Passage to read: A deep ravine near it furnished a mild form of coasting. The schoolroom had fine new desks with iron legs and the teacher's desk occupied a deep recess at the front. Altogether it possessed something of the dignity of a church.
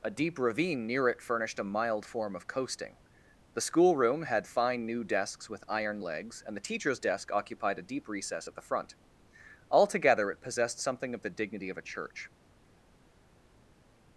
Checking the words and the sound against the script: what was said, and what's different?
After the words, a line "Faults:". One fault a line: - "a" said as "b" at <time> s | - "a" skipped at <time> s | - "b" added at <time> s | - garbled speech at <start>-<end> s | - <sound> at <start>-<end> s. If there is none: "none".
A deep ravine near it furnished a mild form of coasting. The schoolroom had fine new desks with iron legs and the teacher's desk occupied a deep recess at the front. Altogether it possessed something of the dignity of a church.
Faults:
none